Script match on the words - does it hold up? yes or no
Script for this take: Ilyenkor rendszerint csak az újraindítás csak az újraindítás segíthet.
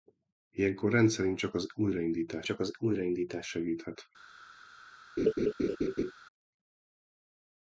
yes